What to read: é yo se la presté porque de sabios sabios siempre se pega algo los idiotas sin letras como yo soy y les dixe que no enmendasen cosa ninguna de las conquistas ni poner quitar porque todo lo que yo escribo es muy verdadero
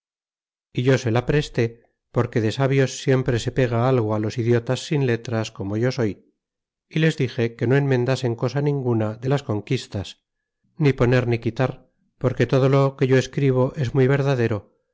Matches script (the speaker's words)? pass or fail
fail